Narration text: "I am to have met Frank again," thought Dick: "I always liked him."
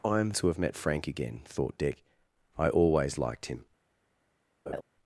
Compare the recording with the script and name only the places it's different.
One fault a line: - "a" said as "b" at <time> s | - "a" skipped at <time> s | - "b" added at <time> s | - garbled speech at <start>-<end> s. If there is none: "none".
none